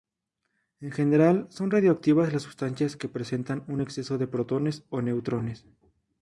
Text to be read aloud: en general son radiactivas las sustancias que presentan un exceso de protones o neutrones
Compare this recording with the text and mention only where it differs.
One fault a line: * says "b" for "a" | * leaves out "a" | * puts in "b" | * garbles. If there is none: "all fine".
all fine